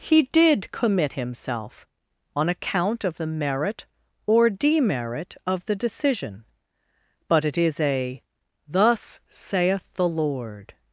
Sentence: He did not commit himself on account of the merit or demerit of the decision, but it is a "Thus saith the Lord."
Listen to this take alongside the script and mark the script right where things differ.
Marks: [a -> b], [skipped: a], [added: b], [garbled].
He did [skipped: not] commit himself on account of the merit or demerit of the decision, but it is a "Thus saith the Lord."